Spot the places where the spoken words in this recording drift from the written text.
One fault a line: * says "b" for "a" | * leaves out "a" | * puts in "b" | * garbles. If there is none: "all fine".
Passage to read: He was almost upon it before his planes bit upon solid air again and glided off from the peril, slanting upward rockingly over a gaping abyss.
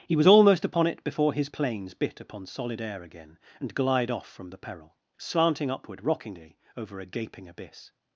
* says "glide" for "glided"